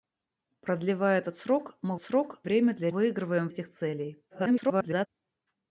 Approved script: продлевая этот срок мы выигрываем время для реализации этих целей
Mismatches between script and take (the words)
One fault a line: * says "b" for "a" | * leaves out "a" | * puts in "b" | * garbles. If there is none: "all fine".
* says "срок" for "выигрываем"
* says "выигрываем" for "реализации"
* garbles